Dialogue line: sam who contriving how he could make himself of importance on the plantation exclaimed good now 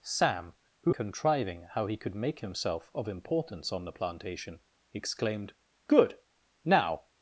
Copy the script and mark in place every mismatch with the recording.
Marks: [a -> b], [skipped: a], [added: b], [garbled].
sam who contriving how he could make himself of importance on the plantation exclaimed good now